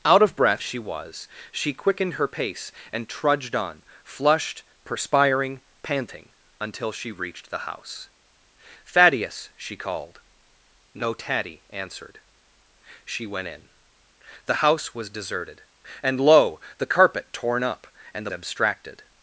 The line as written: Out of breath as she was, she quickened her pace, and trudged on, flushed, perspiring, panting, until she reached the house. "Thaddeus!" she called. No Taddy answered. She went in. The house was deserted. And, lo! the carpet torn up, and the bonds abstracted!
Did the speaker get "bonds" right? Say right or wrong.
wrong